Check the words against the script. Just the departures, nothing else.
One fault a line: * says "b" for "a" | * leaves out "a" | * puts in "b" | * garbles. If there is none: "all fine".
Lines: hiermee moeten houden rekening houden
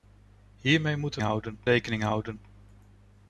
all fine